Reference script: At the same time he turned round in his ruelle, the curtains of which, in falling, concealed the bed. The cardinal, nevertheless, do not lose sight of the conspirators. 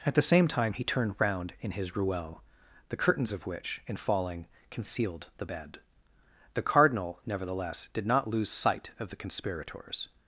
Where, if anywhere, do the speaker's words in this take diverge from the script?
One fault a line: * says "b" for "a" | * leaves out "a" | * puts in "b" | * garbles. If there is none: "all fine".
* says "did" for "do"